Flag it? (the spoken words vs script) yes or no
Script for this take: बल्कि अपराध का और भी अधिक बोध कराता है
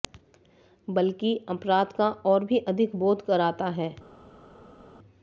no